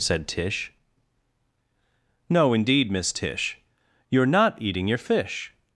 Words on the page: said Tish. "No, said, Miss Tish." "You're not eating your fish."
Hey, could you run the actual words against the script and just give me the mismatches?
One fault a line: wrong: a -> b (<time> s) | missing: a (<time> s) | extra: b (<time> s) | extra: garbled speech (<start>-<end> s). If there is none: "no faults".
wrong: said -> indeed (2.5 s)